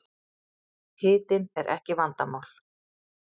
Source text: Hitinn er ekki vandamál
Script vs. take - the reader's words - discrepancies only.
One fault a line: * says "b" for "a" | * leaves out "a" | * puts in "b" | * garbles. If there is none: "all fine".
all fine